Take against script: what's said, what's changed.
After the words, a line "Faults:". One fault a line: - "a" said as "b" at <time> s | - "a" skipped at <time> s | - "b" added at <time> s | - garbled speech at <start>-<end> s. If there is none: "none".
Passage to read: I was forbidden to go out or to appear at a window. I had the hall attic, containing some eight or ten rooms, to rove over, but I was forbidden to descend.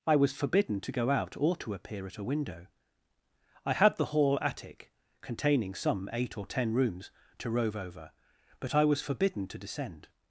I was forbidden to go out or to appear at a window. I had the hall attic, containing some eight or ten rooms, to rove over, but I was forbidden to descend.
Faults:
none